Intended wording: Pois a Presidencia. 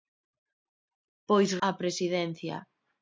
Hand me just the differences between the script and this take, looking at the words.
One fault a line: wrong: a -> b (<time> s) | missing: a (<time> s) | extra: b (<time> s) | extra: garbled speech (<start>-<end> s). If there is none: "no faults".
no faults